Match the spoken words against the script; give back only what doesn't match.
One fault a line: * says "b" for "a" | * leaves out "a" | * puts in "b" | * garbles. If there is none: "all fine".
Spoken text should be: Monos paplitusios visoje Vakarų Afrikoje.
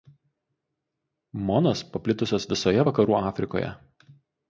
all fine